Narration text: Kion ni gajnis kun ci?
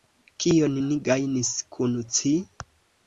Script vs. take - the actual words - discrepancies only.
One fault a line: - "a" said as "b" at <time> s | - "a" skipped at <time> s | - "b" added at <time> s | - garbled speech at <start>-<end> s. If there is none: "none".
none